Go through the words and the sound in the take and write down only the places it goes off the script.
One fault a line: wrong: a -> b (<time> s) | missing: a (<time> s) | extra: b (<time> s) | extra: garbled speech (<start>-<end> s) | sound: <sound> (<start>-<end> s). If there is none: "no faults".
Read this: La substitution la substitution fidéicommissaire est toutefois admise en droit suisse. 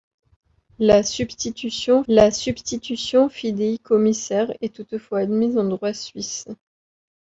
no faults